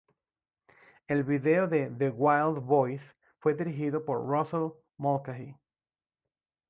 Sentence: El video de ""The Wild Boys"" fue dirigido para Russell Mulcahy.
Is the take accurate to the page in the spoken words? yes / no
no